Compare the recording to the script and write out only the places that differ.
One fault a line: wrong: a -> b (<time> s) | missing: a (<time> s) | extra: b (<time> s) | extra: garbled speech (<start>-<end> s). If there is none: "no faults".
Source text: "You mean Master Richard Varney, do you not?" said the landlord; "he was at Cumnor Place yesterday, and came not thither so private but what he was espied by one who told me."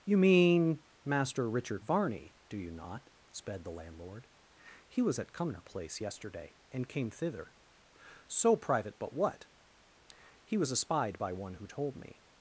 wrong: said -> sped (3.3 s)
missing: not (7.1 s)